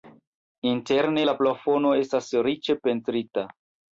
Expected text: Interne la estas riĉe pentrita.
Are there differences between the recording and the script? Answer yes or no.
yes